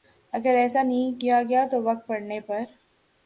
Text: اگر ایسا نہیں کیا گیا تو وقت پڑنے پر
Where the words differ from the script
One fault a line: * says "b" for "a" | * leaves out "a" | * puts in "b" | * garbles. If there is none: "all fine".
all fine